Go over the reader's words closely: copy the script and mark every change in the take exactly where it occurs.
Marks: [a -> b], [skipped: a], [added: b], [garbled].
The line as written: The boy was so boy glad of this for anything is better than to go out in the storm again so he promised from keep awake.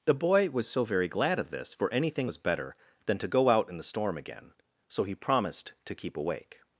The boy was so [boy -> very] glad of this for anything [is -> was] better than to go out in the storm again so he promised [from -> to] keep awake.